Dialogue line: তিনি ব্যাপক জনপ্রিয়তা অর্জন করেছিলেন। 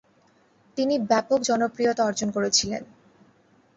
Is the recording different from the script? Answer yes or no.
no